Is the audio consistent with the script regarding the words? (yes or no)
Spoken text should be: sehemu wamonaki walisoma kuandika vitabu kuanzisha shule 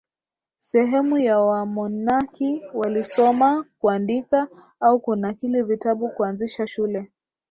no